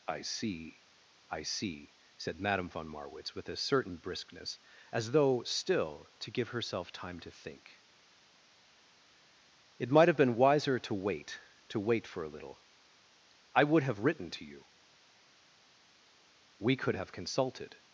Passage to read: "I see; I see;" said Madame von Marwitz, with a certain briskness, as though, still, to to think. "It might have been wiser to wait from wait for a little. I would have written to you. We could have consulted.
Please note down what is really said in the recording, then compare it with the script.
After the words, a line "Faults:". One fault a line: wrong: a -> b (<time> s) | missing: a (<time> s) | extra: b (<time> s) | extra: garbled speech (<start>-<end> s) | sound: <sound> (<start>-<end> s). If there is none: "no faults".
"I see; I see;" said Madame von Marwitz, with a certain briskness, as though, still, to give herself time to think. "It might have been wiser to wait to wait for a little. I would have written to you. We could have consulted.
Faults:
extra: give herself time (6.3 s)
wrong: from -> to (11.7 s)